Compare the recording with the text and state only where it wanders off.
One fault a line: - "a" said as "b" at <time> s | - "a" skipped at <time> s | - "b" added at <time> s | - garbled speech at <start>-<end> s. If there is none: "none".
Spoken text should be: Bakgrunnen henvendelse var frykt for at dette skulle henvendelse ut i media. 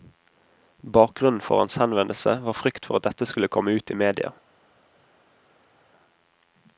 - "for hans" added at 1.4 s
- "henvendelse" said as "komme" at 3.5 s